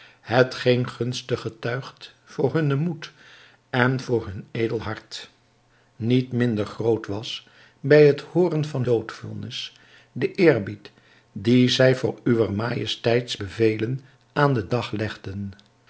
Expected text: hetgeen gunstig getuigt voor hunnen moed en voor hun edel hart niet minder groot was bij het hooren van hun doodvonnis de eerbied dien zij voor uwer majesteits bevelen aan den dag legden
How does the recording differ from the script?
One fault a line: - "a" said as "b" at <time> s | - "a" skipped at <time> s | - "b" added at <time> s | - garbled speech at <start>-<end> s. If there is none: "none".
- "hun" skipped at 8.8 s